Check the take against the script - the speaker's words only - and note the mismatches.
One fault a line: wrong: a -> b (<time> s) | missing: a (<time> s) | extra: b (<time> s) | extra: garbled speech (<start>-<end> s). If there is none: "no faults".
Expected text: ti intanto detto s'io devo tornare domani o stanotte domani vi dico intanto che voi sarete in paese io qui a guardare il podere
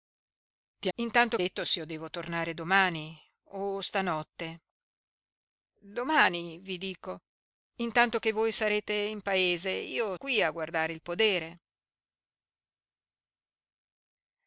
no faults